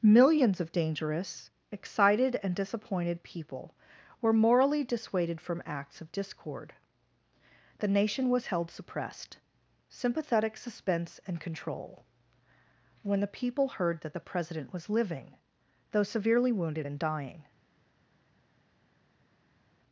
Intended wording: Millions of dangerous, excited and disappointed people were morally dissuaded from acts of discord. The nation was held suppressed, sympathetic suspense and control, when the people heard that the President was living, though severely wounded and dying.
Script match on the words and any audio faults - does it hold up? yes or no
yes